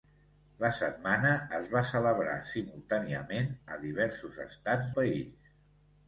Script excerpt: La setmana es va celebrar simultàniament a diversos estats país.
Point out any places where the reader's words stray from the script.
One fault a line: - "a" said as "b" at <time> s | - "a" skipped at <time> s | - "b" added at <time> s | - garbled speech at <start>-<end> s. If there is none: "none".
none